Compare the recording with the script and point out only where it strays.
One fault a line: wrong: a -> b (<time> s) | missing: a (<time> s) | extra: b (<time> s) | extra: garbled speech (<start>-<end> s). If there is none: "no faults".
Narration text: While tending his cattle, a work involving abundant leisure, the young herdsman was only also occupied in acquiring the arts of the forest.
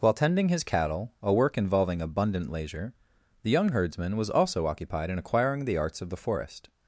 missing: only (4.3 s)